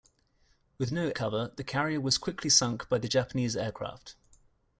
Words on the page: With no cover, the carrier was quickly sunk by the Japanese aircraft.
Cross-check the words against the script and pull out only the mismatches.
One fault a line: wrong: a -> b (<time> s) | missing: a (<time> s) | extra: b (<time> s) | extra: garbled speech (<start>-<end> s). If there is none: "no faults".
no faults